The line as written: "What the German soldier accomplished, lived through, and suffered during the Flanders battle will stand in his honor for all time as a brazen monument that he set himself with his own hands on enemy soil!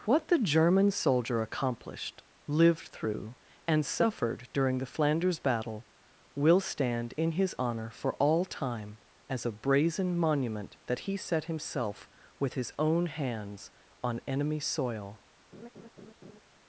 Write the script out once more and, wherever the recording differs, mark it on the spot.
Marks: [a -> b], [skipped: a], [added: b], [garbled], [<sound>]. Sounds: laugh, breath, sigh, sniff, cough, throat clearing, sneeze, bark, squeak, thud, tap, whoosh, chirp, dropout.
"What the German soldier accomplished, lived through, and suffered during the Flanders battle will stand in his honor for all time as a brazen monument that he set himself with his own hands on enemy soil! [laugh]